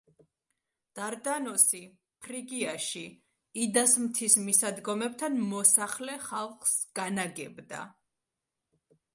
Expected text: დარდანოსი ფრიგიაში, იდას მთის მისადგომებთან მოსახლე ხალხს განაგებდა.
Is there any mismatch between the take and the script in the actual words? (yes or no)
no